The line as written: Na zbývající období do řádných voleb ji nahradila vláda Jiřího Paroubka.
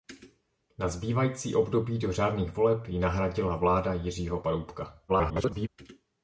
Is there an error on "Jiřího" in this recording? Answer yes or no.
no